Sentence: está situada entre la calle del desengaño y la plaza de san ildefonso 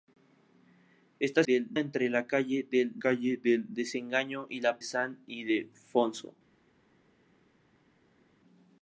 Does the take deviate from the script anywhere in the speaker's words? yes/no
yes